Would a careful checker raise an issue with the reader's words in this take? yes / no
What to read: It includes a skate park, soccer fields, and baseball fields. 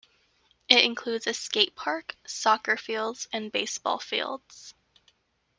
no